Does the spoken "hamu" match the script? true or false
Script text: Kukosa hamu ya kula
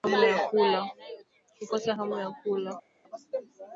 true